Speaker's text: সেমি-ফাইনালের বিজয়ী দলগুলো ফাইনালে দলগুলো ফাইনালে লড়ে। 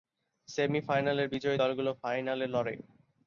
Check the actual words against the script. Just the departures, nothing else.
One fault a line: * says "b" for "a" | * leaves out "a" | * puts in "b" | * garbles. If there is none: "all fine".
* leaves out "দলগুলো ফাইনালে"